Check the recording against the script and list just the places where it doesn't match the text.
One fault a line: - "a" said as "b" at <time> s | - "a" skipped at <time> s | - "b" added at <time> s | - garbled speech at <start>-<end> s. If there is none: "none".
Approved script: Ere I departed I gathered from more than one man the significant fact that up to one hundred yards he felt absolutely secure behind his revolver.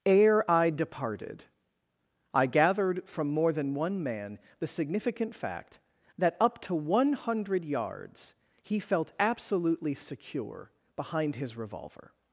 none